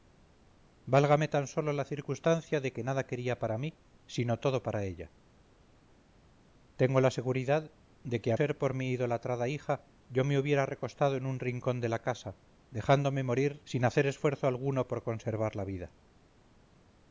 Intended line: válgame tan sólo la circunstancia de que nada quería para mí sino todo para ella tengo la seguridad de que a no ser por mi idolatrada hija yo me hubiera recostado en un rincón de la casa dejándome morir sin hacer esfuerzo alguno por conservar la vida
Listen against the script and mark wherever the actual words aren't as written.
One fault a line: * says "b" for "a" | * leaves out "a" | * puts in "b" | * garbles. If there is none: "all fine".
* leaves out "no"